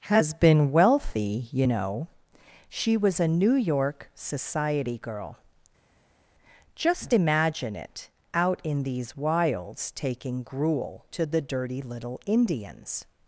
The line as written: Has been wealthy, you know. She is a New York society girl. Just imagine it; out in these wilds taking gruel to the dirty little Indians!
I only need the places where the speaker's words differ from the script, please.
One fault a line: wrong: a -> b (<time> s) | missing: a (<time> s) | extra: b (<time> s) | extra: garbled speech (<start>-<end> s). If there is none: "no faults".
wrong: is -> was (2.9 s)